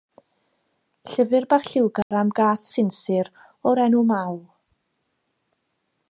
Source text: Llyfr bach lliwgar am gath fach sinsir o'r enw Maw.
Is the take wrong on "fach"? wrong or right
wrong